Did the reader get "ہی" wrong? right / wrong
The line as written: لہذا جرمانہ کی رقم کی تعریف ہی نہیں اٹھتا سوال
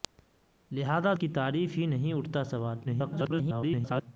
right